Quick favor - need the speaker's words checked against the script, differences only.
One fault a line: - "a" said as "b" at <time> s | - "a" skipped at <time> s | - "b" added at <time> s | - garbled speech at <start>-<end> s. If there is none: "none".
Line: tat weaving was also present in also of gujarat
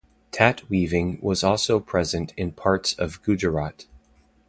- "also" said as "parts" at 2.5 s